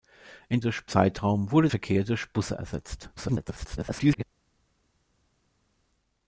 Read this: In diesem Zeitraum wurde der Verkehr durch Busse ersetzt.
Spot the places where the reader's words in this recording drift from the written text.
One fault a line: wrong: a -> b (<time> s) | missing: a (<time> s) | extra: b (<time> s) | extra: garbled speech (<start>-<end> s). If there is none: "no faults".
wrong: diesem -> durch (0.6 s)
missing: der (1.7 s)
extra: garbled speech (3.2-4.2 s)